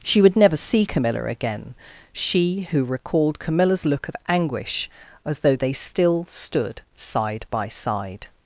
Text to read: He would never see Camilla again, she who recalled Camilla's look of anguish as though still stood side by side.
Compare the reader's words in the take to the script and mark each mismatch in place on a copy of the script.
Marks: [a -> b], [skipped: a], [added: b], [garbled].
[He -> She] would never see Camilla again, she who recalled Camilla's look of anguish as though [added: they] still stood side by side.